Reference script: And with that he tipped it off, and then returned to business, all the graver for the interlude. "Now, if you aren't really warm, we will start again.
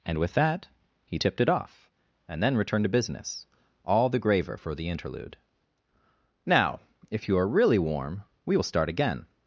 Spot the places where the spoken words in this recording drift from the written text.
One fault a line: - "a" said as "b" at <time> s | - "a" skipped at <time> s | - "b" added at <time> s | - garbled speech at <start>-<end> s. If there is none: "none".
- "aren't" said as "are" at 7.4 s